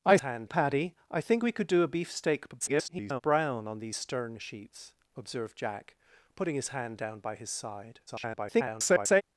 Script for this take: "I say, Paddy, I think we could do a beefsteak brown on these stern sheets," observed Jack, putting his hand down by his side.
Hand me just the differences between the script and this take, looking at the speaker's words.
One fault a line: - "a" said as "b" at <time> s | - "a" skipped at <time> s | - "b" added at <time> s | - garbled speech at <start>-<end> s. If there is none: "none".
- "say" said as "hand" at 0.2 s
- garbled speech at 2.6-3.2 s
- garbled speech at 8.1-9.2 s